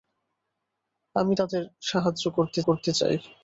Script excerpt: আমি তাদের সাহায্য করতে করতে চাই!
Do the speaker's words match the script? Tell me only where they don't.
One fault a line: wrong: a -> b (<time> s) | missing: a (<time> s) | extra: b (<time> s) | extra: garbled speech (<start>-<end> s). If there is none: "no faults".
no faults